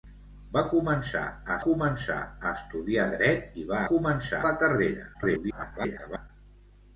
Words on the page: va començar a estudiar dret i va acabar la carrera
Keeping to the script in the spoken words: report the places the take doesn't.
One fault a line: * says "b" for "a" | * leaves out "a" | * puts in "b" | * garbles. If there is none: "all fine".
* puts in "començar a"
* says "començar" for "acabar"
* garbles